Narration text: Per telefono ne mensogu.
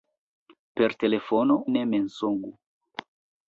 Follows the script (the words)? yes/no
yes